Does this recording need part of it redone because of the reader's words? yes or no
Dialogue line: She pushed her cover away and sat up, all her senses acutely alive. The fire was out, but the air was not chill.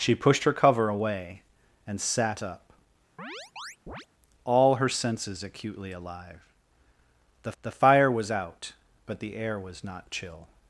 yes